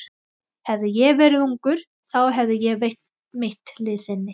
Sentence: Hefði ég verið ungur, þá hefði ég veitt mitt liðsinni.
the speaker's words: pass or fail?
pass